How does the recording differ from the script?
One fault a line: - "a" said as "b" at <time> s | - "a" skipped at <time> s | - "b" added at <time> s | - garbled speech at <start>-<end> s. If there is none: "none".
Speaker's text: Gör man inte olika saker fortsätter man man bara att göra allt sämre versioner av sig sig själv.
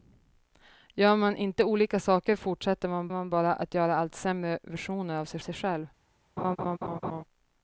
none